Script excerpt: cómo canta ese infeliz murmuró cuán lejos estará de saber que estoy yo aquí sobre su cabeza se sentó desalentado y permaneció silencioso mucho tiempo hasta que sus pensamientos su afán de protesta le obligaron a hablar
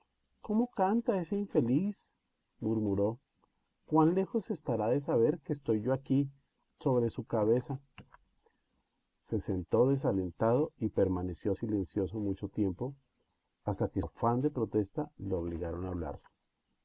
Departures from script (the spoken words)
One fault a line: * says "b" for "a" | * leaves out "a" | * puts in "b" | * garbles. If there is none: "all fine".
* leaves out "sus pensamientos su"